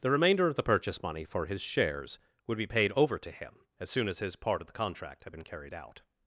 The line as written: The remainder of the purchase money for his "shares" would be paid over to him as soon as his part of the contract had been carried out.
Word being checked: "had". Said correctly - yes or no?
yes